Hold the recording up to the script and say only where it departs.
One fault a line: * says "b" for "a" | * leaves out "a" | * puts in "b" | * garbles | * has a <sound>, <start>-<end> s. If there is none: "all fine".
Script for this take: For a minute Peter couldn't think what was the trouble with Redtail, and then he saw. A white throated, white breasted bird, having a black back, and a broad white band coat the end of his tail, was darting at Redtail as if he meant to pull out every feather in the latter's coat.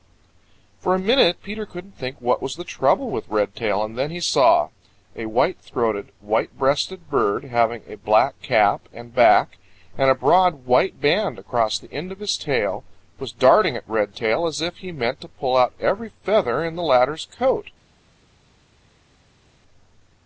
* puts in "cap and"
* says "across" for "coat"